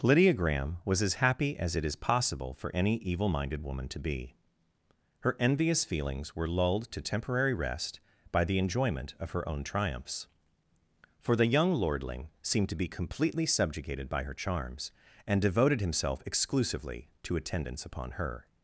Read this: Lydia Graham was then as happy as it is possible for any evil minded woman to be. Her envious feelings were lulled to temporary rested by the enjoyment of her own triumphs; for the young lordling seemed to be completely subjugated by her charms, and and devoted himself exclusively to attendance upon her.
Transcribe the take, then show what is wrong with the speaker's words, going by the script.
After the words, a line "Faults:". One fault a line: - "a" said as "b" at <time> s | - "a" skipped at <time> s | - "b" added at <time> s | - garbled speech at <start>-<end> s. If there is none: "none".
Lydia Graham was as happy as it is possible for any evil minded woman to be. Her envious feelings were lulled to temporary rest by the enjoyment of her own triumphs; for the young lordling seemed to be completely subjugated by her charms, and devoted himself exclusively to attendance upon her.
Faults:
- "then" skipped at 1.0 s
- "rested" said as "rest" at 7.5 s
- "and" skipped at 15.4 s